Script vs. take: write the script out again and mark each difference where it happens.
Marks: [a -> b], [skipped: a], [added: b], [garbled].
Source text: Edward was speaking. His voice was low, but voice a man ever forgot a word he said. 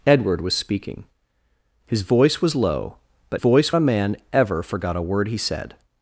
Edward was speaking. His voice was low, but voice a man ever forgot a word he said.